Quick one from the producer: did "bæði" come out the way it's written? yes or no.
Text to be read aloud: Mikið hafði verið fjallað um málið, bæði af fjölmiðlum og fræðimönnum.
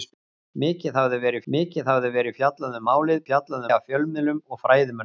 no